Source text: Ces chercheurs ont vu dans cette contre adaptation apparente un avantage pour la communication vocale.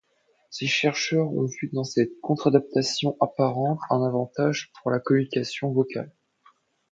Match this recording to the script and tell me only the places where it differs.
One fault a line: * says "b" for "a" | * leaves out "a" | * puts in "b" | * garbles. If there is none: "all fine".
all fine